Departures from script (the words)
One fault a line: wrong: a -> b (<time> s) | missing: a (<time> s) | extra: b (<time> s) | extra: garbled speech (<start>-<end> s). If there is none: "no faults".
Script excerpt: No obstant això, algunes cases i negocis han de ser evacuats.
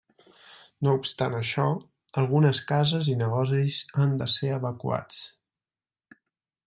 no faults